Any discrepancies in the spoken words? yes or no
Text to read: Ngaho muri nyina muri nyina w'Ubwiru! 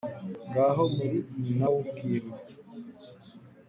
yes